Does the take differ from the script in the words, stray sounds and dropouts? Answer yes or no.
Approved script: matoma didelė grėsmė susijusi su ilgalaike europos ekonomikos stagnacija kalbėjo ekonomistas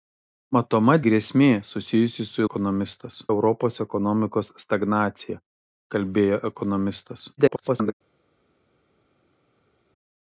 yes